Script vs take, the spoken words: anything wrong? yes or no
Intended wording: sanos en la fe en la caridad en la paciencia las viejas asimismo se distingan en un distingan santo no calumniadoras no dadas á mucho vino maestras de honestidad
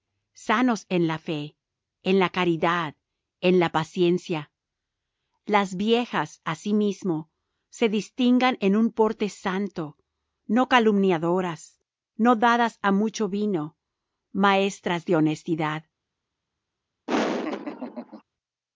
yes